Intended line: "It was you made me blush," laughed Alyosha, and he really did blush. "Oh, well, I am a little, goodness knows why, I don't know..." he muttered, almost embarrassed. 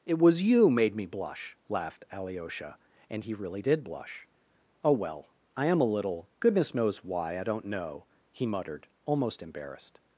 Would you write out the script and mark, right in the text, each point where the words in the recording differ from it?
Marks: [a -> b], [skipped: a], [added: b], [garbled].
"It was you made me blush," laughed Alyosha, and he really did blush. "Oh, well, I am a little, goodness knows why, I don't know..." he muttered, almost embarrassed.